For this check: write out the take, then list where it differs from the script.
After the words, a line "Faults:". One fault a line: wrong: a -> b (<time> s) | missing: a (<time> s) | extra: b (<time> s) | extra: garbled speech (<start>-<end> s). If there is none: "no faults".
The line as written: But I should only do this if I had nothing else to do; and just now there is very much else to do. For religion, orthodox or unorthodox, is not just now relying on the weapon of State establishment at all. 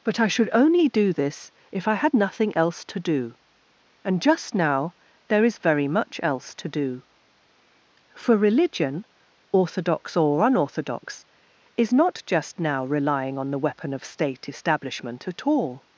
But I should only do this if I had nothing else to do; and just now there is very much else to do. For religion, orthodox or unorthodox, is not just now relying on the weapon of State establishment at all.
Faults:
no faults